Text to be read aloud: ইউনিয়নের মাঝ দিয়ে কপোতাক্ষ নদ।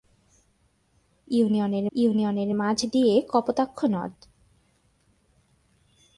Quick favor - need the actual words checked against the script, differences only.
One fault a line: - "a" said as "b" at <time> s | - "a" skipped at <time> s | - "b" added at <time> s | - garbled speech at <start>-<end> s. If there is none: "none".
- "ইউনিয়নের" added at 1.9 s